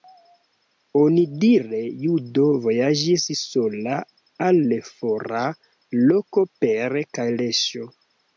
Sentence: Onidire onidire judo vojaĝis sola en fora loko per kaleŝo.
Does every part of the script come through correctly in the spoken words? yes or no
no